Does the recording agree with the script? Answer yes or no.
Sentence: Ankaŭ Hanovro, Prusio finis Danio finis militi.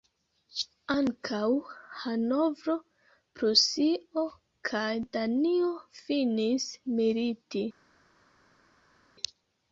no